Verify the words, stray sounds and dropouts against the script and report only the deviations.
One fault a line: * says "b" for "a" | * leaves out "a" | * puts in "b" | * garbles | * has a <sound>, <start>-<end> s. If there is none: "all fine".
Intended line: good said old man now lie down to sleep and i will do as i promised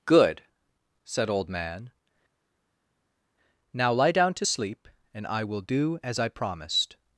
all fine